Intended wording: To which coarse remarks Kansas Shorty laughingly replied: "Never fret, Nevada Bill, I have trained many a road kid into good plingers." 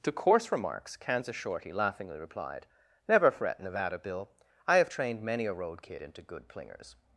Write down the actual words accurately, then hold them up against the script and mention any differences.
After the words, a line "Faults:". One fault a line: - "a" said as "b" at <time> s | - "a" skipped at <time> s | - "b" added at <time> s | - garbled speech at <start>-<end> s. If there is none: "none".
To coarse remarks Kansas Shorty laughingly replied: "Never fret, Nevada Bill, I have trained many a road kid into good plingers."
Faults:
- "which" skipped at 0.1 s